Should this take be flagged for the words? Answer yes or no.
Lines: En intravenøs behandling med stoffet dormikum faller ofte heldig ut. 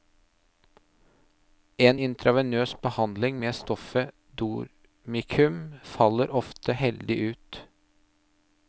no